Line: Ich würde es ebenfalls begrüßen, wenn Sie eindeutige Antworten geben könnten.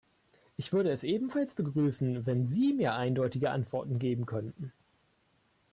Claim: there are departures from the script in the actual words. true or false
true